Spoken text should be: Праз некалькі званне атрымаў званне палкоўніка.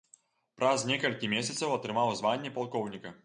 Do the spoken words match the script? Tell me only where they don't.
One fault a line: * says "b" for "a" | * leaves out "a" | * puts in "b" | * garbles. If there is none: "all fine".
* says "месяцаў" for "званне"